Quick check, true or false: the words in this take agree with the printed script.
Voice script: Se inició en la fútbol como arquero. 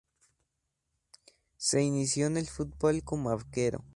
false